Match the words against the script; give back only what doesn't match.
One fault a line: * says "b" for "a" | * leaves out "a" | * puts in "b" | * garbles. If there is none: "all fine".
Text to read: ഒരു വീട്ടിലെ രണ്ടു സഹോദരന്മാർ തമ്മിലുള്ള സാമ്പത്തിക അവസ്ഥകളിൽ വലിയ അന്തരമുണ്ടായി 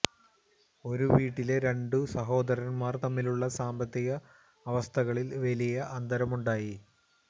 all fine